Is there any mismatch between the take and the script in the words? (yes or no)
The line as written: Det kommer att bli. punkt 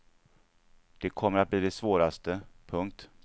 yes